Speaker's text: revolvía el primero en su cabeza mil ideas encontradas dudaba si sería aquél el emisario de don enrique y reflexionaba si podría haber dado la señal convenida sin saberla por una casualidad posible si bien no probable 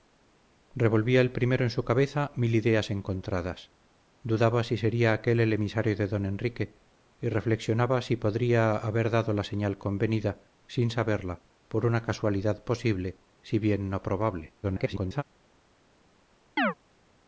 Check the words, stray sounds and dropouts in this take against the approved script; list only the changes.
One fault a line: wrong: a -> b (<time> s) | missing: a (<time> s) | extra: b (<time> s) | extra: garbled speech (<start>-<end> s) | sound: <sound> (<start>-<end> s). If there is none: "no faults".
extra: garbled speech (14.6-15.2 s)
sound: chirp (16.6-16.7 s)